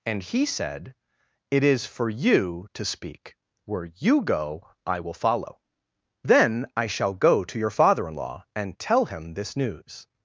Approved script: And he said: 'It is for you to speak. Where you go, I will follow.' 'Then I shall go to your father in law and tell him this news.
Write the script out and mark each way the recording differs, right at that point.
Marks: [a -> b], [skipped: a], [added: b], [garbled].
And he said: 'It is for you to speak. Where you go, I will follow.' 'Then I shall go to your father in law and tell him this news.